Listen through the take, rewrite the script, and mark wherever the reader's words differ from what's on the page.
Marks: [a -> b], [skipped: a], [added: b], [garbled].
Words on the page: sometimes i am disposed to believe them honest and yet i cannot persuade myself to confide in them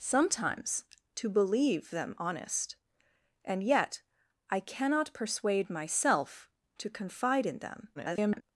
sometimes [skipped: i am disposed] to believe them honest and yet i cannot persuade myself to confide in them [garbled]